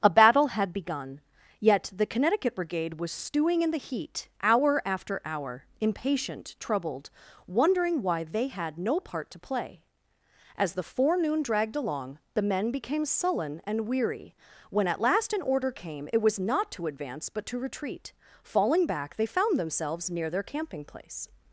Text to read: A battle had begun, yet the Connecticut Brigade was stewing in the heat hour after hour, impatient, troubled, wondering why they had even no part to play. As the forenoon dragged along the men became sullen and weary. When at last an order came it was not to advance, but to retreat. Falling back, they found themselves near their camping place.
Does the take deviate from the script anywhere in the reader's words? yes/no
yes